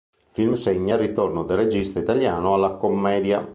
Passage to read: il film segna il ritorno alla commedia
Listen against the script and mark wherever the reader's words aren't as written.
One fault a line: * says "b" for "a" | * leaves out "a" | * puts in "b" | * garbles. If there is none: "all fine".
* puts in "del regista italiano"